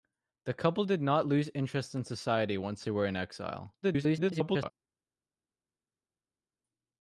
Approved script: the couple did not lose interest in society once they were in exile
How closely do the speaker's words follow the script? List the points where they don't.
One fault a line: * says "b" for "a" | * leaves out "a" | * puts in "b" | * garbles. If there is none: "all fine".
* garbles